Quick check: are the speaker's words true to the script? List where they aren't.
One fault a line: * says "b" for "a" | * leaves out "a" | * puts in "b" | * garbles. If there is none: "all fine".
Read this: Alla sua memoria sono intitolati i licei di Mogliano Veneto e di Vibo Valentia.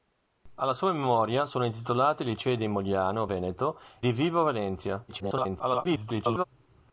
* leaves out "e"
* garbles